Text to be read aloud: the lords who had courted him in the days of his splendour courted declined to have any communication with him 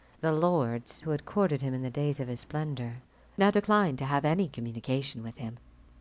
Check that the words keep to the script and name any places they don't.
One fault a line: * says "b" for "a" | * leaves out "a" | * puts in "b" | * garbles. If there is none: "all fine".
* says "now" for "courted"